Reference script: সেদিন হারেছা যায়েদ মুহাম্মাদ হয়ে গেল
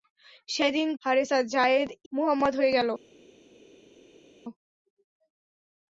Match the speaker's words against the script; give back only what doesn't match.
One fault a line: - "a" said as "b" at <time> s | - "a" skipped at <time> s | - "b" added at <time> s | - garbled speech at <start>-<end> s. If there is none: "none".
none